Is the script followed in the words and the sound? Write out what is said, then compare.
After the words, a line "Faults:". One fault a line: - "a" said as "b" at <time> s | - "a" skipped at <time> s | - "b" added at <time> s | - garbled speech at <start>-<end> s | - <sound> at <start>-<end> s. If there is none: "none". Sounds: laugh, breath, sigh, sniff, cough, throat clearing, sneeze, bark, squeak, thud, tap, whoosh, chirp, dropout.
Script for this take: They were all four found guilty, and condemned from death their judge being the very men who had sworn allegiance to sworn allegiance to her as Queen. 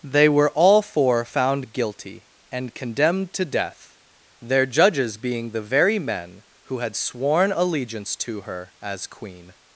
They were all four found guilty, and condemned to death their judges being the very men who had sworn allegiance to her as Queen.
Faults:
- "from" said as "to" at 3.3 s
- "judge" said as "judges" at 4.7 s
- "sworn allegiance to" skipped at 8.4 s